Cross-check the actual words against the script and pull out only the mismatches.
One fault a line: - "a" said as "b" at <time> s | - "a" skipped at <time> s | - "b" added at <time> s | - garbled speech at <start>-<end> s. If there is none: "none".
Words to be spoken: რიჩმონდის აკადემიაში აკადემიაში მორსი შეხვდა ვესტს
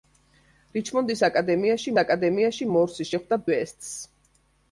none